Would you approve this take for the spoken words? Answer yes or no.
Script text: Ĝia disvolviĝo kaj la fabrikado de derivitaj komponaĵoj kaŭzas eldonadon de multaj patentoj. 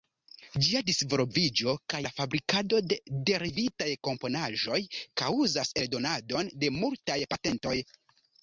yes